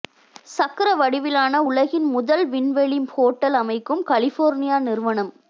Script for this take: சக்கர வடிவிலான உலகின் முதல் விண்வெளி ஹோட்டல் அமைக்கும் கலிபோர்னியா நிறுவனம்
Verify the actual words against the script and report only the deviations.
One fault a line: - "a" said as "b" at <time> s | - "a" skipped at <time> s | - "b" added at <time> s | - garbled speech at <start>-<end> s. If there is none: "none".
none